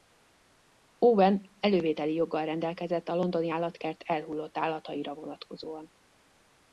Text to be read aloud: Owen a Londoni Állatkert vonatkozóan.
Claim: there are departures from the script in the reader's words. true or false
true